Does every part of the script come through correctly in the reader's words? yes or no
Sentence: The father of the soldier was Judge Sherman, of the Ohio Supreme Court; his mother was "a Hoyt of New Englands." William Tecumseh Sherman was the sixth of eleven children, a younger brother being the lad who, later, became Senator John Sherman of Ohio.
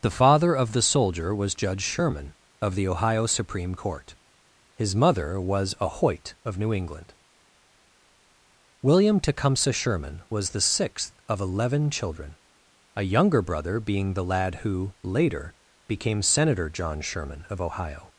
no